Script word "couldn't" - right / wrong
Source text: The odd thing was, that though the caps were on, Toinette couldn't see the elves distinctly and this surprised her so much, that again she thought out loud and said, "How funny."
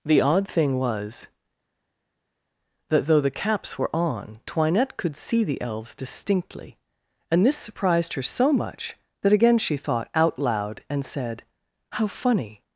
wrong